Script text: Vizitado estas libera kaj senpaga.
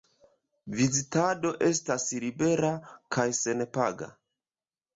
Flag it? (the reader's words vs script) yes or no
no